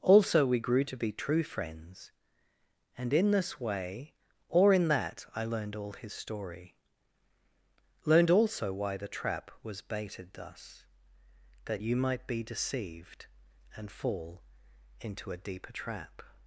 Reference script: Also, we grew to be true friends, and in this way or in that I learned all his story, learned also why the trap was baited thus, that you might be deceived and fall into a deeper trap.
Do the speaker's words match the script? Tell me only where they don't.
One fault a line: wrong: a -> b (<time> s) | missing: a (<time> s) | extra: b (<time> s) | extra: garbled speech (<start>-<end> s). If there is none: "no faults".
no faults